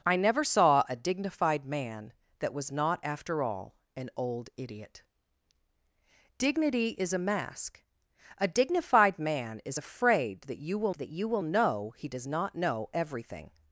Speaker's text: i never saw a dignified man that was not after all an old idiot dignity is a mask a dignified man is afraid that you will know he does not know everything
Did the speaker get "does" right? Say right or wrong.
right